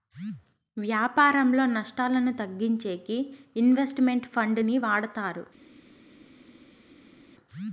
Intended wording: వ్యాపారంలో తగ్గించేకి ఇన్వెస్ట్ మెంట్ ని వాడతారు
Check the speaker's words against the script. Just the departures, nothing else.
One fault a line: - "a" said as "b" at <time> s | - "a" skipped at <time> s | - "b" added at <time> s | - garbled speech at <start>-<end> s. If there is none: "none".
- "నష్టాలను" added at 1.7 s
- "ఫండ్" added at 4.3 s